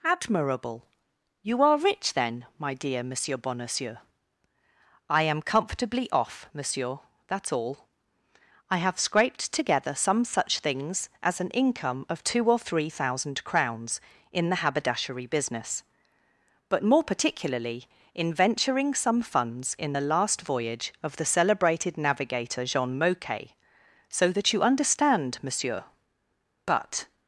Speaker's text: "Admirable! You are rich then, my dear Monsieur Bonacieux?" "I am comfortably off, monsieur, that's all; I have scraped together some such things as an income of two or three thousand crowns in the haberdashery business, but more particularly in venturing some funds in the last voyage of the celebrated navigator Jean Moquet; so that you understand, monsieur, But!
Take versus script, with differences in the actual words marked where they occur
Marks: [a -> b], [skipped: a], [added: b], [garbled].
"Admirable! You are rich then, my dear Monsieur Bonacieux?" "I am comfortably off, monsieur, that's all; I have scraped together some such things as an income of two or three thousand crowns in the haberdashery business, but more particularly in venturing some funds in the last voyage of the celebrated navigator Jean Moquet; so that you understand, monsieur, But!